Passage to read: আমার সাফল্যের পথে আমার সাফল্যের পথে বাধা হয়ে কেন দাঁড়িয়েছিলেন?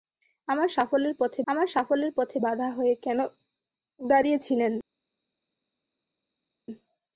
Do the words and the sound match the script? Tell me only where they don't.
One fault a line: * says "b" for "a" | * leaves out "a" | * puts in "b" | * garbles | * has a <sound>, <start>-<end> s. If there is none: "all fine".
all fine